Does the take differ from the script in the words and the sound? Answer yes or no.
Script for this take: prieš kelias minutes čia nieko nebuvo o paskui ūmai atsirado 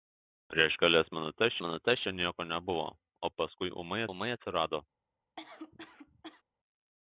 yes